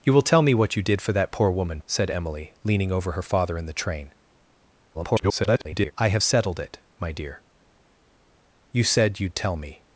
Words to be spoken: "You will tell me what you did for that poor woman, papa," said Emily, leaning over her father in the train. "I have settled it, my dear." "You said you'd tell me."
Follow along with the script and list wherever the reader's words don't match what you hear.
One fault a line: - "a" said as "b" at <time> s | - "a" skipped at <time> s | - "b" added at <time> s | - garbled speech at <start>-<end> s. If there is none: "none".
- "papa" skipped at 1.8 s
- garbled speech at 4.9-5.9 s